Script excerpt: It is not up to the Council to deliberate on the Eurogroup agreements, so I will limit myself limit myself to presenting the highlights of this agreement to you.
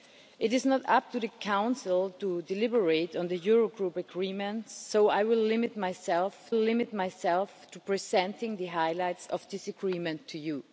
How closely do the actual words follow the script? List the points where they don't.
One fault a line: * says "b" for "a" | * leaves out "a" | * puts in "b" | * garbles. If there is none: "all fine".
all fine